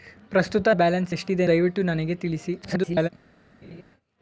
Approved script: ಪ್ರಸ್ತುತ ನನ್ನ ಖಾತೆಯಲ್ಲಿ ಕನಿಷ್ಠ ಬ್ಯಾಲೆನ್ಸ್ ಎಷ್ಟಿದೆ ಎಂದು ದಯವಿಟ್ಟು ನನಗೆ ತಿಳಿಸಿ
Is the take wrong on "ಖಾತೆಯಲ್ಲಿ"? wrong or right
wrong